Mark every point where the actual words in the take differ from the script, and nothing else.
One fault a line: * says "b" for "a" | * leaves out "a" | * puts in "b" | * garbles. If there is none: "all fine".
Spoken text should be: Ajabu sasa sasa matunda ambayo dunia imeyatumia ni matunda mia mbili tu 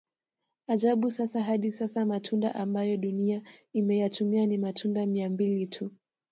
* puts in "hadi"